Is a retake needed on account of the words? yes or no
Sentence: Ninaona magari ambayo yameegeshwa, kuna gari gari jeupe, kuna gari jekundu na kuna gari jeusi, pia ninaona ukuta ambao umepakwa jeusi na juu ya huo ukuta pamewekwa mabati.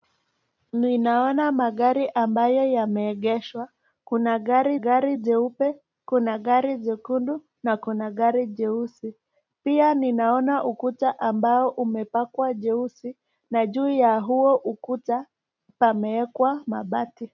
no